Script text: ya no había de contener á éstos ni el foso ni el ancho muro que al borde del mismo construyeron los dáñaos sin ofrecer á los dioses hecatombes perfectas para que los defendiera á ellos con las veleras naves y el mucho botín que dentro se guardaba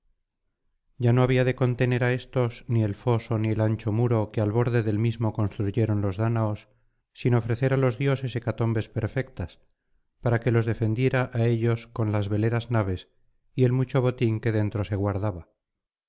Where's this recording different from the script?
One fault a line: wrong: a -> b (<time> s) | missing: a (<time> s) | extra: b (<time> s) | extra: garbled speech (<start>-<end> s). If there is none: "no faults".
no faults